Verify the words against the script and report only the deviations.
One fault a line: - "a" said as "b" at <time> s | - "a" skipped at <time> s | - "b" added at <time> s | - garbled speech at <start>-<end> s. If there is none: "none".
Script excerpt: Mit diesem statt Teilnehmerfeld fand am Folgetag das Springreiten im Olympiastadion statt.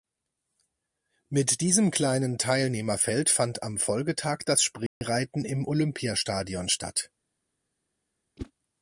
- "statt" said as "kleinen" at 1.9 s